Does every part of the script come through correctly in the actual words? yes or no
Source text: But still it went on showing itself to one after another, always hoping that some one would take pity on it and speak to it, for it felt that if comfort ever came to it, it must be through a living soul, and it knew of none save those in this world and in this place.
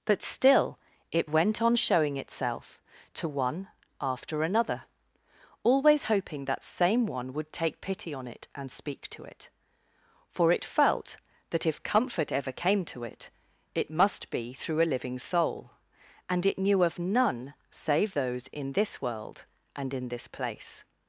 no